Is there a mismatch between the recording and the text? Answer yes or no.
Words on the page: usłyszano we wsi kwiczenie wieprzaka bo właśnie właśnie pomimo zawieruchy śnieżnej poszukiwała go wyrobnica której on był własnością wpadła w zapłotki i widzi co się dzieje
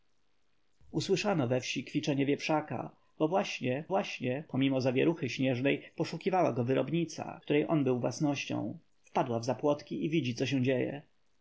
no